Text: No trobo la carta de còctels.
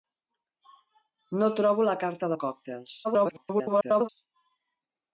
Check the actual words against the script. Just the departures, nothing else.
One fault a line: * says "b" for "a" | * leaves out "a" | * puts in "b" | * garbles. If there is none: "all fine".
* garbles